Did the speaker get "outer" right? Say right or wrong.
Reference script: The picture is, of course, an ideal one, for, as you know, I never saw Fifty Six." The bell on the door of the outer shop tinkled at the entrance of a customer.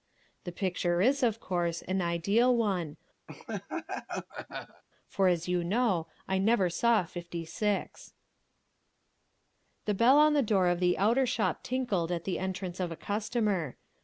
right